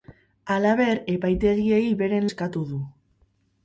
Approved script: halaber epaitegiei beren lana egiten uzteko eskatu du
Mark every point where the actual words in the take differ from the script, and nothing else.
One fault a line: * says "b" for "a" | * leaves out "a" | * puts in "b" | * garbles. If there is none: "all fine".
* leaves out "lana egiten uzteko"